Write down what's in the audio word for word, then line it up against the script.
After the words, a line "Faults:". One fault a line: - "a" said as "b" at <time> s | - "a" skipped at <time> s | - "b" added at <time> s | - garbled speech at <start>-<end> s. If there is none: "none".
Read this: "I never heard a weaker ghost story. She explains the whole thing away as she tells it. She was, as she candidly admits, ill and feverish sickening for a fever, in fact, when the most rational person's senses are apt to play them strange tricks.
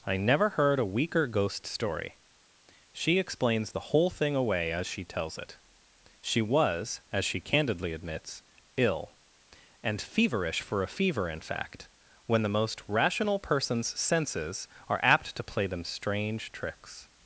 "I never heard a weaker ghost story. She explains the whole thing away as she tells it. She was, as she candidly admits, ill and feverish for a fever, in fact, when the most rational person's senses are apt to play them strange tricks.
Faults:
- "sickening" skipped at 10.6 s